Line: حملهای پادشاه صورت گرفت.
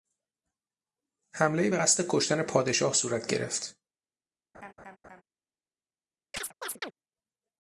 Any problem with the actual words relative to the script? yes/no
yes